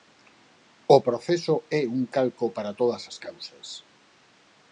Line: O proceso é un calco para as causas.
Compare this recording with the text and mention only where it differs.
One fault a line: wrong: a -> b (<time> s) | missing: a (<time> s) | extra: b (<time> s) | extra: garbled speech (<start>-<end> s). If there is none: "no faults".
extra: todas (2.8 s)